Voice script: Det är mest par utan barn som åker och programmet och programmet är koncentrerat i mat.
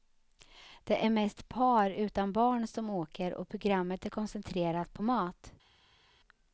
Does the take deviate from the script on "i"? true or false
true